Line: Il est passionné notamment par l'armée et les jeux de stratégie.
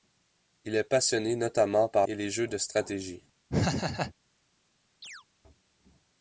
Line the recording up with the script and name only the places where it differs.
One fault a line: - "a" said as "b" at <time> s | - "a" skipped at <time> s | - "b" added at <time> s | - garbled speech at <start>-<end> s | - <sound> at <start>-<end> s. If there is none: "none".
- "l'armée" skipped at 2.1 s
- laugh at 3.5-4.1 s
- chirp at 5.0-5.2 s